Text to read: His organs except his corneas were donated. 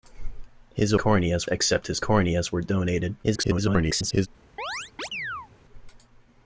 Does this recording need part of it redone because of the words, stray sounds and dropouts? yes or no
yes